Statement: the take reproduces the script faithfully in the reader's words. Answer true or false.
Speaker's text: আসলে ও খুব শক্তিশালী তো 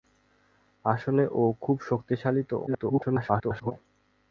false